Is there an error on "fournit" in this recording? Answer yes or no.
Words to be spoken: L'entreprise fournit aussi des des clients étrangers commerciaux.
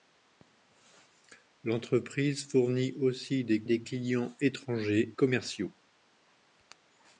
no